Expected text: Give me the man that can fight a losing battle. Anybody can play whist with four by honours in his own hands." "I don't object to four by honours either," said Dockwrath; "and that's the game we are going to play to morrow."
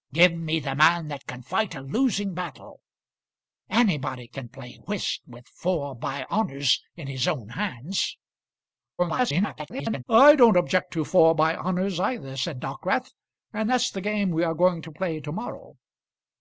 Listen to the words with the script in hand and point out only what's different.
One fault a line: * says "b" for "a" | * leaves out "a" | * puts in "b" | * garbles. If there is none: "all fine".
* garbles